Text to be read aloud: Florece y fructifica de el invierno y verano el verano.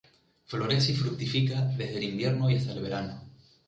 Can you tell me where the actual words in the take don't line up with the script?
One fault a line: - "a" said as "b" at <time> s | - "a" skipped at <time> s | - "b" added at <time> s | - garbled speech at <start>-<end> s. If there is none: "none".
- "de" said as "desde" at 1.8 s
- "verano" said as "hasta" at 2.6 s